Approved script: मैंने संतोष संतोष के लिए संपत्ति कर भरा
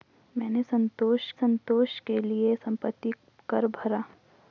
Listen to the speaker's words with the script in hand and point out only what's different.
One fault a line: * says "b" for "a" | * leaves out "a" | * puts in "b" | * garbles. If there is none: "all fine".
all fine